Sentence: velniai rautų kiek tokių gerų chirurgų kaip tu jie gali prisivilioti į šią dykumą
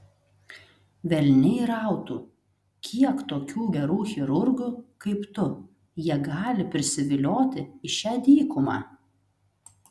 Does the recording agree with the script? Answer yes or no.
yes